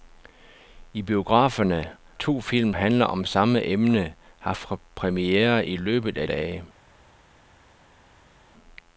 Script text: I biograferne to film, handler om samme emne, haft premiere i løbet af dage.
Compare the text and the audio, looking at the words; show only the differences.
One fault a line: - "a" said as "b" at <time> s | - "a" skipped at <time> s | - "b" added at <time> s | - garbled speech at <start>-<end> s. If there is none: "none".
none